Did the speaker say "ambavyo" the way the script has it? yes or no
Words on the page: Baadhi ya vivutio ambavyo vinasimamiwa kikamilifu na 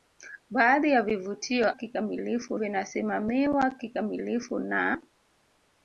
no